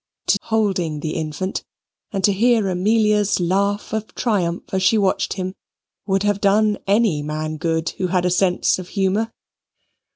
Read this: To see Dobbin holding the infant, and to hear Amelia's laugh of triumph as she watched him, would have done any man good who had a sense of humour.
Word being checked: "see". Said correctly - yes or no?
no